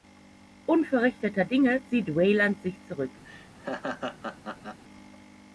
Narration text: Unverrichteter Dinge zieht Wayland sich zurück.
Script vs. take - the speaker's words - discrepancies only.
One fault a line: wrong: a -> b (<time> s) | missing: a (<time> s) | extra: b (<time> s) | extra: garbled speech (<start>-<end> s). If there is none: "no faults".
no faults